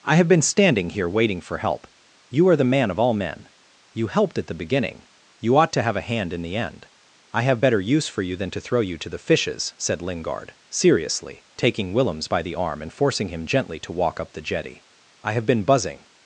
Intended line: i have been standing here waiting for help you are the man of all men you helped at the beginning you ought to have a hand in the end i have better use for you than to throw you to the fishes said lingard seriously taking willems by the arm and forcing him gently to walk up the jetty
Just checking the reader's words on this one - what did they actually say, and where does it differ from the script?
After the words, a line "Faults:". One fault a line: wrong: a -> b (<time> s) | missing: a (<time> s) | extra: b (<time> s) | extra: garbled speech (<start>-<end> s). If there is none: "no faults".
i have been standing here waiting for help you are the man of all men you helped at the beginning you ought to have a hand in the end i have better use for you than to throw you to the fishes said lingard seriously taking willems by the arm and forcing him gently to walk up the jetty i have been buzzing
Faults:
extra: i have been buzzing (15.2 s)